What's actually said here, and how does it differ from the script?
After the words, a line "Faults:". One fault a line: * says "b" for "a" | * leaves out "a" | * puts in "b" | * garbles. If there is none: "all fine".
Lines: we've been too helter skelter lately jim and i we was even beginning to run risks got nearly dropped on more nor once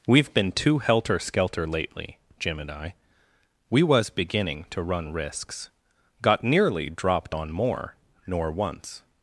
we've been too helter skelter lately jim and i we was beginning to run risks got nearly dropped on more nor once
Faults:
* leaves out "even"